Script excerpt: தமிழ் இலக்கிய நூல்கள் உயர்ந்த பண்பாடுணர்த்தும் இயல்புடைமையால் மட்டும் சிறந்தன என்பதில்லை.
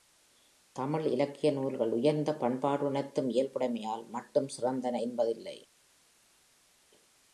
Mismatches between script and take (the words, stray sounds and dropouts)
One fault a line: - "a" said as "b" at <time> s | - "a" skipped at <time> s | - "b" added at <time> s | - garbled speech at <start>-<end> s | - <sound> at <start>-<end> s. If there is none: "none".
none